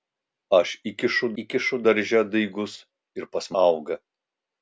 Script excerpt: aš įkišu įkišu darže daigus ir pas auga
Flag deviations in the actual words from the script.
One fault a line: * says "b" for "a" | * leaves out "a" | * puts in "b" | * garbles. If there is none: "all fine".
all fine